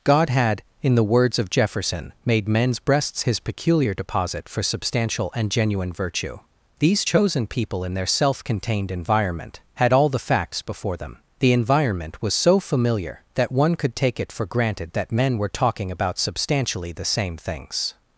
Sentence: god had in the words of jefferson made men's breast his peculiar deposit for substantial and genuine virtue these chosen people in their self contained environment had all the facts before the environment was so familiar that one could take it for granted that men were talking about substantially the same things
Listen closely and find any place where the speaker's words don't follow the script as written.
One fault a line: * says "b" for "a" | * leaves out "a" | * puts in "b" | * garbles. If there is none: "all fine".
* says "breasts" for "breast"
* puts in "them"